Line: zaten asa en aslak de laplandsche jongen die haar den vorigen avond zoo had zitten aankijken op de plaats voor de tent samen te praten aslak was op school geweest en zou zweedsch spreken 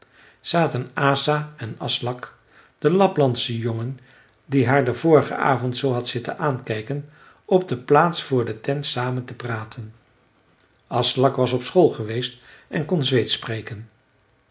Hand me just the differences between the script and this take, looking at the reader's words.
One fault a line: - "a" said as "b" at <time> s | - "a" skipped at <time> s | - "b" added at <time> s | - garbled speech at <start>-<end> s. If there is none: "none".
- "zou" said as "kon" at 12.8 s